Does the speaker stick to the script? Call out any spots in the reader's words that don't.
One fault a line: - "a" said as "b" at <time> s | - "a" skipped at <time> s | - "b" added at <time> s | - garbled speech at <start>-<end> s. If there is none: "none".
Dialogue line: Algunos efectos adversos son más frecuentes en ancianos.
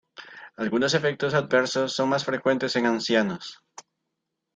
none